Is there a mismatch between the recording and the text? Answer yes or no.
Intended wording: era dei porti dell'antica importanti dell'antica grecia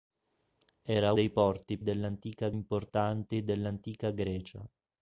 no